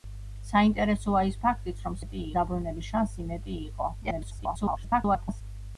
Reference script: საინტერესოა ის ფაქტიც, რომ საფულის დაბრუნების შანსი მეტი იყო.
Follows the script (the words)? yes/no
no